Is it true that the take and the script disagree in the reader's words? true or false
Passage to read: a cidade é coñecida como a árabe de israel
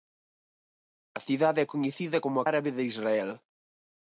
false